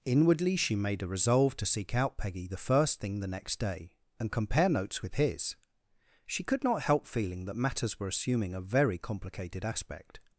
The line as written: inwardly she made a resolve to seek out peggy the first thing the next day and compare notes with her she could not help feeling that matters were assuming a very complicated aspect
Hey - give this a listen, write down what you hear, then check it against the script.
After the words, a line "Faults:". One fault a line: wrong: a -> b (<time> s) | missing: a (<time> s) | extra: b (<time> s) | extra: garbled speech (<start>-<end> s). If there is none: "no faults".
inwardly she made a resolve to seek out peggy the first thing the next day and compare notes with his she could not help feeling that matters were assuming a very complicated aspect
Faults:
wrong: her -> his (5.2 s)